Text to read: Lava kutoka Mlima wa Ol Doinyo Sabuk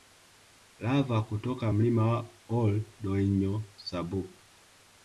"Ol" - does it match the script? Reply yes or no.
yes